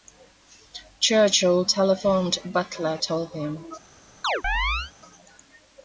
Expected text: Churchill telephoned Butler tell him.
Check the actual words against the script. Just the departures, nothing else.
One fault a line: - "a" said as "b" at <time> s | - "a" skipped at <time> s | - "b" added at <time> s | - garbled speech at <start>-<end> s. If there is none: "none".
none